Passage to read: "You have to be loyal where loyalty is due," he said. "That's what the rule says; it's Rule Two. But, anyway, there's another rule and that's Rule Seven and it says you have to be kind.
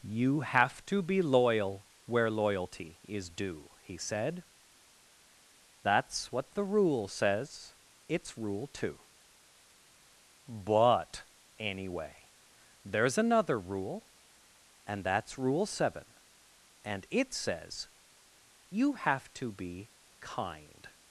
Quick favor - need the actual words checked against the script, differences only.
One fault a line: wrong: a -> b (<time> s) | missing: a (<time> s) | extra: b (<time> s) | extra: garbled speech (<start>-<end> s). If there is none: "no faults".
no faults